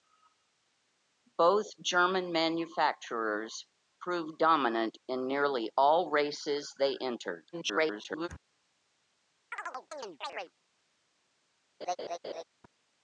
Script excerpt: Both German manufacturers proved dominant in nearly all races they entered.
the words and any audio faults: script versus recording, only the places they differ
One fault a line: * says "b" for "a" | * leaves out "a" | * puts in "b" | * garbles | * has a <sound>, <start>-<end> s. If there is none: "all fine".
* garbles
* has a chirp, 9.5-10.5 s
* has a laugh, 11.8-12.4 s